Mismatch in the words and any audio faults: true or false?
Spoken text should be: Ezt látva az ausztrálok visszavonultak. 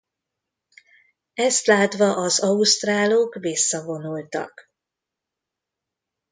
false